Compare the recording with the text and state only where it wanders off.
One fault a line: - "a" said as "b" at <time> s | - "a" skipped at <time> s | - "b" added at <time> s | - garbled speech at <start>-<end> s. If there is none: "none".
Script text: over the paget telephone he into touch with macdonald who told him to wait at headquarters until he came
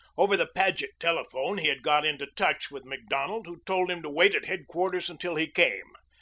- "had got" added at 1.7 s